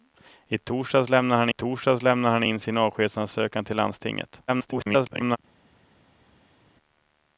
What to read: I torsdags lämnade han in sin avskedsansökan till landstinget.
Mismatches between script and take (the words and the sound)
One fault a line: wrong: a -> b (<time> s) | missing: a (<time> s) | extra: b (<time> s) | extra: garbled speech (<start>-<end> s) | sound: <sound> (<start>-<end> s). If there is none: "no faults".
extra: torsdags lämnade han (1.5 s)
extra: garbled speech (4.5-5.4 s)